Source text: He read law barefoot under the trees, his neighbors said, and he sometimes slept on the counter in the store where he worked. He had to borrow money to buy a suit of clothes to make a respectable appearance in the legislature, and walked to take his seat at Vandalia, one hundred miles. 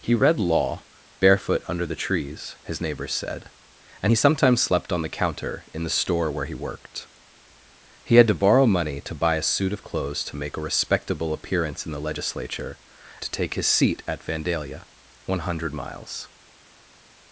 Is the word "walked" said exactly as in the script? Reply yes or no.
no